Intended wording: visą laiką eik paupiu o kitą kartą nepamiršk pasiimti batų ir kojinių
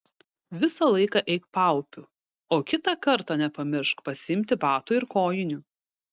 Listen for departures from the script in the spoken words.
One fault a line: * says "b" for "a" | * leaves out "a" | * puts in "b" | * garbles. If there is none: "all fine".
all fine